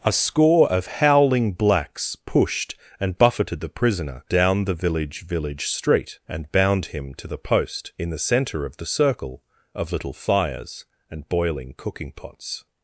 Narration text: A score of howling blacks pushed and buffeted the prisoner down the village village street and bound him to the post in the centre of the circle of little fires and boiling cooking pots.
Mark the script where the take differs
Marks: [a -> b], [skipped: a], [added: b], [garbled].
A score of howling blacks pushed and buffeted the prisoner down the village village street and bound him to the post in the centre of the circle of little fires and boiling cooking pots.